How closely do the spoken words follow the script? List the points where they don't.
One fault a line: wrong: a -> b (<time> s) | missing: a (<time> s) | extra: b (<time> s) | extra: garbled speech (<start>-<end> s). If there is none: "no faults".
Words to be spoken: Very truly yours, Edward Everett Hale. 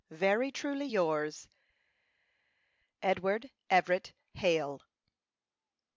no faults